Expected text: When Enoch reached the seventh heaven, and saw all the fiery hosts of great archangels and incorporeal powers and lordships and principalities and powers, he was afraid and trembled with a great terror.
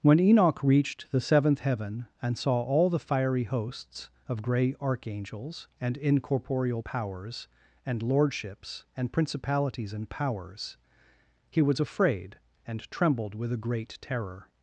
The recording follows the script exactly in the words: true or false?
false